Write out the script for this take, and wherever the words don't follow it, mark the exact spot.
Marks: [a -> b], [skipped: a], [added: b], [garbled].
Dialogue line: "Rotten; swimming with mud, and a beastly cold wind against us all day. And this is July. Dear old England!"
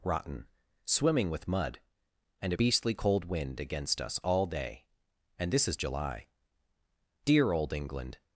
"Rotten; swimming with mud, and a beastly cold wind against us all day. And this is July. Dear old England!"